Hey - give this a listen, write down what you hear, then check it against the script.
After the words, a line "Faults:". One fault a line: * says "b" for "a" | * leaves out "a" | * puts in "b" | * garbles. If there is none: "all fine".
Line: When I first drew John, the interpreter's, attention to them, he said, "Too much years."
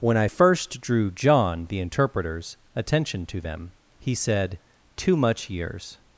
When I first drew John, the interpreter's, attention to them, he said, "Too much years."
Faults:
all fine